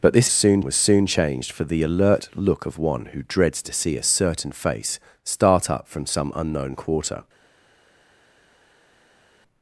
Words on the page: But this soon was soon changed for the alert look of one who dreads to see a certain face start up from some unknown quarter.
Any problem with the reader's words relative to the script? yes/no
no